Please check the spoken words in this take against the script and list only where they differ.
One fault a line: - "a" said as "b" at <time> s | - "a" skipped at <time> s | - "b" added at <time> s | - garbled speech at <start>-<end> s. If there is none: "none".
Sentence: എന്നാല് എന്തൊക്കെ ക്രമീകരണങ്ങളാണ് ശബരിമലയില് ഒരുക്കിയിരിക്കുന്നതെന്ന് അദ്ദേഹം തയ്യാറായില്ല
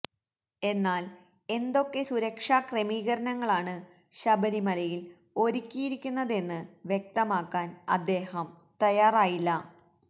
- "സുരക്ഷാ" added at 2.0 s
- "വ്യക്തമാക്കാന്" added at 6.9 s